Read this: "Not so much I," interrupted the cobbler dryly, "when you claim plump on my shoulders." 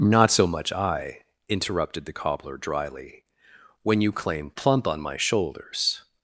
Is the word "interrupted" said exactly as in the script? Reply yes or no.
yes